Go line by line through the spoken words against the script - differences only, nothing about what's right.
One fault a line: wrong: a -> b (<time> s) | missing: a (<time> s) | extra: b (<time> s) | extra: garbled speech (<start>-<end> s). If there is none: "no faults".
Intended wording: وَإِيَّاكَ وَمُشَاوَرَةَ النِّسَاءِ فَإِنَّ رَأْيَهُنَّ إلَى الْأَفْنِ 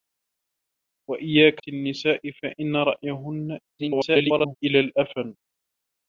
missing: وَمُشَاوَرَةَ (1.6 s)
extra: garbled speech (3.8-4.6 s)